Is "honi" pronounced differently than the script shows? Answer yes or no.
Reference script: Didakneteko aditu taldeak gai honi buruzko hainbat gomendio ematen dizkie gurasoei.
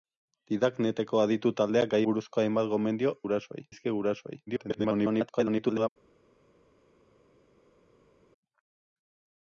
yes